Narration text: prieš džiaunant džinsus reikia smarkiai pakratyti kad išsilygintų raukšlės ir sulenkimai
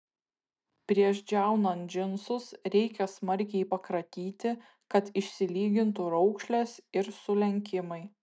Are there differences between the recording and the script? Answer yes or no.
no